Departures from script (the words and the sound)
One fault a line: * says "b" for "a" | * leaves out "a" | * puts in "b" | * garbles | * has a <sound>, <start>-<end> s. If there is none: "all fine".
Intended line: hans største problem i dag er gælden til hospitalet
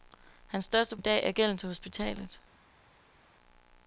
* leaves out "problem"